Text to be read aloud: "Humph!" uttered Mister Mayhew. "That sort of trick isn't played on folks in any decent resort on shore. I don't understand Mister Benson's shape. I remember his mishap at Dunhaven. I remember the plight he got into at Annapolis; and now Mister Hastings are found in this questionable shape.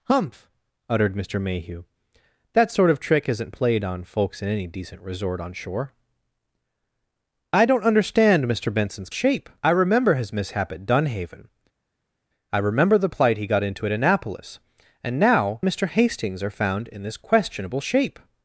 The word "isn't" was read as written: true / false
true